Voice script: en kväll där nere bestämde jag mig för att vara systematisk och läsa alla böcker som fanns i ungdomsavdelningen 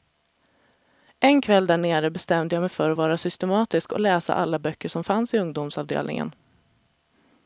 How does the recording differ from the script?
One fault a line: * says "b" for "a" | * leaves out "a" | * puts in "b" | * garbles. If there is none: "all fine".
all fine